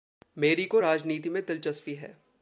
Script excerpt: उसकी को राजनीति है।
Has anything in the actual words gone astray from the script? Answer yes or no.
yes